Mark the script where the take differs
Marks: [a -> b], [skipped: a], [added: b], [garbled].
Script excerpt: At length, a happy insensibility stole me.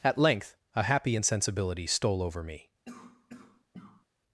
At length, a happy insensibility stole [added: over] me.